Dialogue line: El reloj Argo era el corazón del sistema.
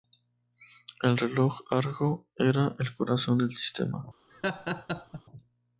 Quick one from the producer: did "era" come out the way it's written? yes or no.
yes